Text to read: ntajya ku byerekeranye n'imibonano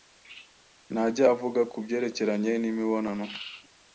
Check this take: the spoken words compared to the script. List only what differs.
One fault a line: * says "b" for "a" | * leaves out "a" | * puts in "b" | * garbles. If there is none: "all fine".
* puts in "avuga"